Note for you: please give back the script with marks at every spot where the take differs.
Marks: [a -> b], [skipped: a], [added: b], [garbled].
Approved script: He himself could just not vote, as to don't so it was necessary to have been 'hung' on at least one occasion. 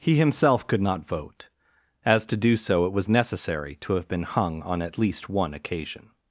He himself could [skipped: just] not vote, as to [don't -> do] so it was necessary to have been 'hung' on at least one occasion.